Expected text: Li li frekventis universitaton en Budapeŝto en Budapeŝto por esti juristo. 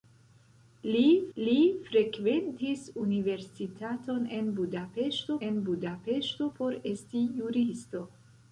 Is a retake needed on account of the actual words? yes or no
no